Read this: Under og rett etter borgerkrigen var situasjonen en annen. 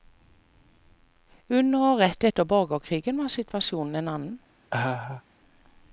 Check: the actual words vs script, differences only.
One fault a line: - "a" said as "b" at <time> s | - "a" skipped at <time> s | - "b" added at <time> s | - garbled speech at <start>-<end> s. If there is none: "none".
none